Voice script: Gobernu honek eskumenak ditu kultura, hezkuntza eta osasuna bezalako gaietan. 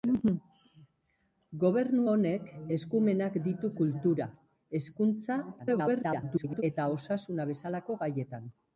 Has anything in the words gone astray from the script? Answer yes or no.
yes